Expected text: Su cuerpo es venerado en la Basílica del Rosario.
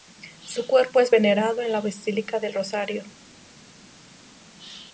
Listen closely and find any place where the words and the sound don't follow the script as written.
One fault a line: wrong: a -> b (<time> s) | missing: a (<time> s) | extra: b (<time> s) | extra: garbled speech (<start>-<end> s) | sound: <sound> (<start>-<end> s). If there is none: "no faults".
no faults